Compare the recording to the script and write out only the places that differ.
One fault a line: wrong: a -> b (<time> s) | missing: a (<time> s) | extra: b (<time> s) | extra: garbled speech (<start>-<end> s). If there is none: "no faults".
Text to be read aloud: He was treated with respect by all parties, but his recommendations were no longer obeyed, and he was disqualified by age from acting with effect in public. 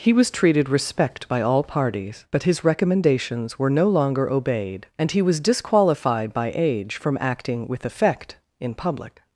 missing: with (0.7 s)